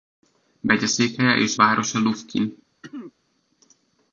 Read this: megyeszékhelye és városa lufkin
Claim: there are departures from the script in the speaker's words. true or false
false